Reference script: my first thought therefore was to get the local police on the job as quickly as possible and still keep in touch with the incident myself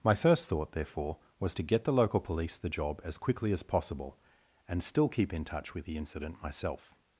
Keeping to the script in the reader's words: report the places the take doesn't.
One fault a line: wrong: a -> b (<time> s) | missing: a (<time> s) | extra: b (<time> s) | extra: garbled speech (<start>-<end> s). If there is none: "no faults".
missing: on (2.6 s)